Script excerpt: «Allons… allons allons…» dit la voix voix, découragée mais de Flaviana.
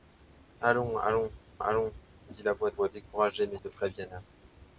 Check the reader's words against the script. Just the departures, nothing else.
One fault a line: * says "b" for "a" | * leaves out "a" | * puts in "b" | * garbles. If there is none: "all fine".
all fine